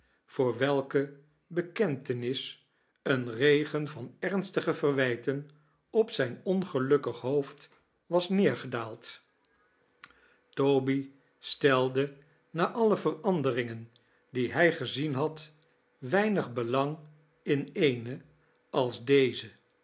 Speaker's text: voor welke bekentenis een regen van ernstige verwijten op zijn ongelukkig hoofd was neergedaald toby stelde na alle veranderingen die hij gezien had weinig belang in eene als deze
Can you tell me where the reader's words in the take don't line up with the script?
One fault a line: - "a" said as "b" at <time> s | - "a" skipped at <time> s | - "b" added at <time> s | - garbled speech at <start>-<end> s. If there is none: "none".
none